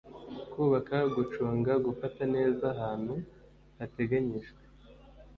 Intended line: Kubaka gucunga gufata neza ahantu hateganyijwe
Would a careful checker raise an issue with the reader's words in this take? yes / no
no